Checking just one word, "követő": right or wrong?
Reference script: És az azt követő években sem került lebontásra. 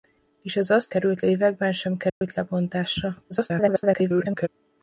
wrong